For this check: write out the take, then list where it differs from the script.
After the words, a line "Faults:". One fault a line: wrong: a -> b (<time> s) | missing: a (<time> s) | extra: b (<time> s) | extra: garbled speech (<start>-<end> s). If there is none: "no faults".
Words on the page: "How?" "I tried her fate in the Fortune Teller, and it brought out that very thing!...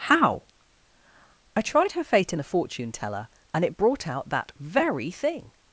"How?" "I tried her fate in the Fortune Teller, and it brought out that very thing!...
Faults:
no faults